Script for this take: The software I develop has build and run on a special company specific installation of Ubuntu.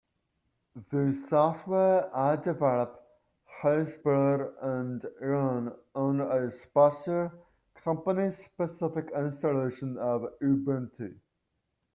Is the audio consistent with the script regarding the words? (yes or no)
yes